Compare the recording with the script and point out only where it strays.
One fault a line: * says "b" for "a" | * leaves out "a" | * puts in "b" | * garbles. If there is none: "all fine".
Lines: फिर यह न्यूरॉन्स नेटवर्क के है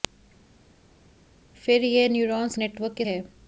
all fine